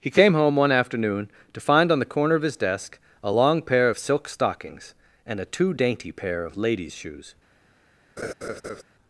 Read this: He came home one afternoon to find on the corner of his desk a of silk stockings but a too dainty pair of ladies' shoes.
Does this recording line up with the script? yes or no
no